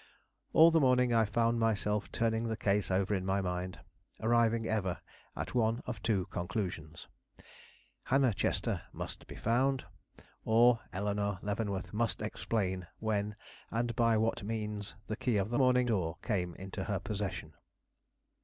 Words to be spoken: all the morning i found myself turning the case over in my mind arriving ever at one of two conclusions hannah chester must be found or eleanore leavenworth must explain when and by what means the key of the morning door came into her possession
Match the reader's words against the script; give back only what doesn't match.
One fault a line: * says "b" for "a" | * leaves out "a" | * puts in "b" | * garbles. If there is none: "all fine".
all fine